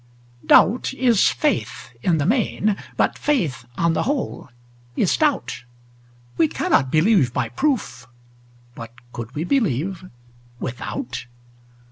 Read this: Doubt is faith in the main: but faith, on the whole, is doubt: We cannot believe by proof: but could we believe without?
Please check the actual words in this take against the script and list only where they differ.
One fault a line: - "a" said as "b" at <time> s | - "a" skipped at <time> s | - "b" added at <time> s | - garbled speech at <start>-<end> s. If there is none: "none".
none